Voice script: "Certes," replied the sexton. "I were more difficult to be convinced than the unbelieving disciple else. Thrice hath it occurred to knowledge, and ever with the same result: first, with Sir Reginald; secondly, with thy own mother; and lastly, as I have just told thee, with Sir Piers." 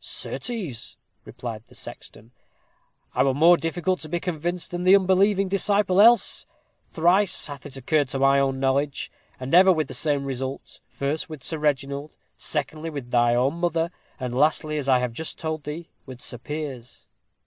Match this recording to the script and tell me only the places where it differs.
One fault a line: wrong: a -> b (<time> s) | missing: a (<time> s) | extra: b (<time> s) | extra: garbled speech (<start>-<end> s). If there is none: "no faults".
extra: my own (8.2 s)